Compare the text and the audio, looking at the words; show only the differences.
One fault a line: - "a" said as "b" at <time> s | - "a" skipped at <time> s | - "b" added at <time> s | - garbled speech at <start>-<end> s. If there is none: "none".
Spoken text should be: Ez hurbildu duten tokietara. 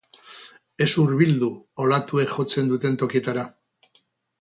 - "olatuek jotzen" added at 1.9 s